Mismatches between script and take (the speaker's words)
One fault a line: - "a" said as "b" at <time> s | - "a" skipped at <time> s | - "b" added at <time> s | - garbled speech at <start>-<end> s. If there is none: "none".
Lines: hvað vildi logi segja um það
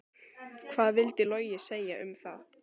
none